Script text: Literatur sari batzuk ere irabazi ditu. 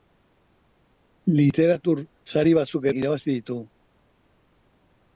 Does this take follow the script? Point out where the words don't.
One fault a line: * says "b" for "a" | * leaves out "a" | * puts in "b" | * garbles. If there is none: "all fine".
* leaves out "ere"